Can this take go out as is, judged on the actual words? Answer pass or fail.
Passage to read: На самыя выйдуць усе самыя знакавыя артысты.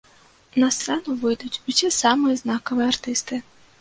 fail